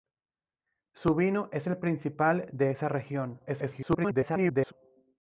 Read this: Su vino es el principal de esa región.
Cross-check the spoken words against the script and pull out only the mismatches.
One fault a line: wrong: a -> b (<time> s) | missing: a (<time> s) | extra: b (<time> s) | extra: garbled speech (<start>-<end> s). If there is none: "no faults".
extra: garbled speech (3.5-4.7 s)